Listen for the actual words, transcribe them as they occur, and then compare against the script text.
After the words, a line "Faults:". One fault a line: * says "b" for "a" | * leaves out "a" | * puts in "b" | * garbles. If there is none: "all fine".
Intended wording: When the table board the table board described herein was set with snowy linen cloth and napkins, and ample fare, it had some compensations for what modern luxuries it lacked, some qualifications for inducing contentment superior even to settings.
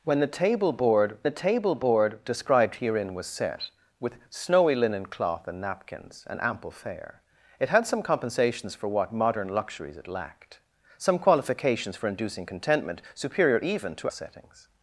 When the table board the table board described herein was set with snowy linen cloth and napkins, and ample fare, it had some compensations for what modern luxuries it lacked, some qualifications for inducing contentment superior even to settings.
Faults:
all fine